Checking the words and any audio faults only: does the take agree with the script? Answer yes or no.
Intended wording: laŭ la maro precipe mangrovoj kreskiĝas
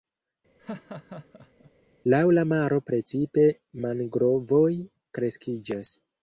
no